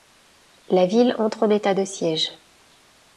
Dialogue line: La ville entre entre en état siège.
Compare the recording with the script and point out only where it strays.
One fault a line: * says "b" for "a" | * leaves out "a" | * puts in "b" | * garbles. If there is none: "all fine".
* leaves out "entre"
* puts in "de"